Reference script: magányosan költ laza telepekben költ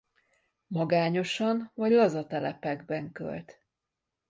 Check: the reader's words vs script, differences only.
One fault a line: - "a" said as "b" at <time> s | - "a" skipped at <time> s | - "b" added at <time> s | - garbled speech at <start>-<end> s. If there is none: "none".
- "költ" said as "vagy" at 1.8 s